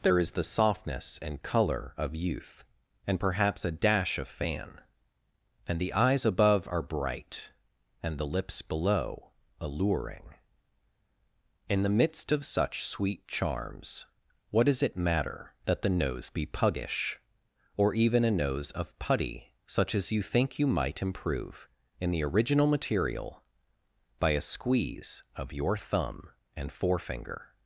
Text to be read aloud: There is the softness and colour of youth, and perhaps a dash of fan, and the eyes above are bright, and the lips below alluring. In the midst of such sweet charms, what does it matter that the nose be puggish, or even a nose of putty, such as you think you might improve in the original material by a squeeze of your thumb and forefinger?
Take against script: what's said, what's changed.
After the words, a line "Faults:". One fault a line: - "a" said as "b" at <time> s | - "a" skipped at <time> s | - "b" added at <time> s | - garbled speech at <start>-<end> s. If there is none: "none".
There is the softness and colour of youth, and perhaps a dash of fan, and the eyes above are bright, and the lips below alluring. In the midst of such sweet charms, what does it matter that the nose be puggish, or even a nose of putty, such as you think you might improve in the original material by a squeeze of your thumb and forefinger?
Faults:
none